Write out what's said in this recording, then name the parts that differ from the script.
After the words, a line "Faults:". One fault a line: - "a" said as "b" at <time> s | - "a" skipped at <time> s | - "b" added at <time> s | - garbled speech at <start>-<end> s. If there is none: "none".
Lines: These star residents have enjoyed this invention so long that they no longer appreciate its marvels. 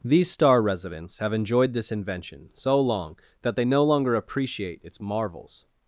These star residents have enjoyed this invention so long that they no longer appreciate its marvels.
Faults:
none